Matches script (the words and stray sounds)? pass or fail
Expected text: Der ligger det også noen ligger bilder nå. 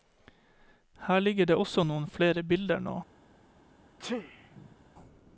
fail